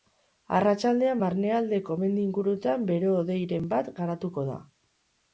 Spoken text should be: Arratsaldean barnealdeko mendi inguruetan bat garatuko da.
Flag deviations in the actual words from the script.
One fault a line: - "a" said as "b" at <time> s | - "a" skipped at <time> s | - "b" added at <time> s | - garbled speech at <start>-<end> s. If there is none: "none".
- "bero hodeiren" added at 2.9 s